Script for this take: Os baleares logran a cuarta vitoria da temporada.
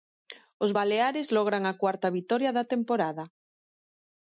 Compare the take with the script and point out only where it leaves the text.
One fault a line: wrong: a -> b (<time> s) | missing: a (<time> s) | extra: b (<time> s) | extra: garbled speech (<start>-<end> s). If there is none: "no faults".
no faults